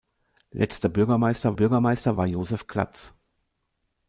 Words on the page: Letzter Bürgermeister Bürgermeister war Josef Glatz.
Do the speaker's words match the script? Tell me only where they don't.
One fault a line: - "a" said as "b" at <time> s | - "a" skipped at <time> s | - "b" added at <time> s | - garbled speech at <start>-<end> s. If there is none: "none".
none